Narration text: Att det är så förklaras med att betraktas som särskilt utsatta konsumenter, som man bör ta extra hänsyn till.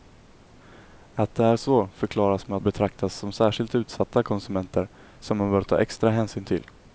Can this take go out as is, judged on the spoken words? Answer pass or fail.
pass